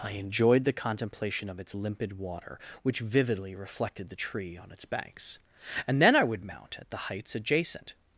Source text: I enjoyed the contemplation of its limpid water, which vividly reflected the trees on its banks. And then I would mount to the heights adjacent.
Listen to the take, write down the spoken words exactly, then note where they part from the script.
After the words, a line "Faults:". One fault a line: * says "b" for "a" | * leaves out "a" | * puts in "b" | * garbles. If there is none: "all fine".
I enjoyed the contemplation of its limpid water, which vividly reflected the tree on its banks. And then I would mount at the heights adjacent.
Faults:
* says "tree" for "trees"
* says "at" for "to"